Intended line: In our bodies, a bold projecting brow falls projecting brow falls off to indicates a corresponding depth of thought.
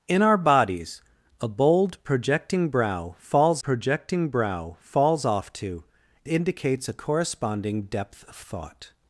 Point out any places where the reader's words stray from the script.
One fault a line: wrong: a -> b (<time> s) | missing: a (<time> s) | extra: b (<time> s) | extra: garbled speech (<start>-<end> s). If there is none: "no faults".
no faults